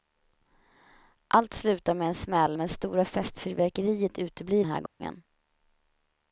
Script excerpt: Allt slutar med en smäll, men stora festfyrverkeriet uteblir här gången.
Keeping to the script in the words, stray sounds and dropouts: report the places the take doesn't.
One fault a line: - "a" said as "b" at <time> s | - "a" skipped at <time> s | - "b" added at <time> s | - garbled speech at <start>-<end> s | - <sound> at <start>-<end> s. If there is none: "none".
- dropout at 4.9-5.0 s